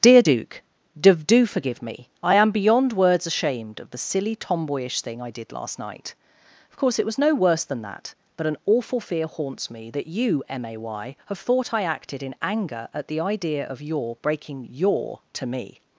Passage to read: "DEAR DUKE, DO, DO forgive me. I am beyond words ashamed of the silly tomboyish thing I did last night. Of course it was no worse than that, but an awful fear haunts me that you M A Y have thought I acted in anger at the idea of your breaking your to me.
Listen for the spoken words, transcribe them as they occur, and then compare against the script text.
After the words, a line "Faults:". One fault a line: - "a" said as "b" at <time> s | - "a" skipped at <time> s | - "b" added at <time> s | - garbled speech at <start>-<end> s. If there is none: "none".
"DEAR DUKE, DO, DO forgive me. I am beyond words ashamed of the silly tomboyish thing I did last night. Of course it was no worse than that, but an awful fear haunts me that you M A Y have thought I acted in anger at the idea of your breaking your to me.
Faults:
none